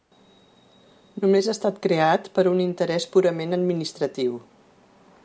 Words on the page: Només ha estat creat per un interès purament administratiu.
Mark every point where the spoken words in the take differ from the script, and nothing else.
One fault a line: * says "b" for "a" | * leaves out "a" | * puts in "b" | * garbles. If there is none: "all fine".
all fine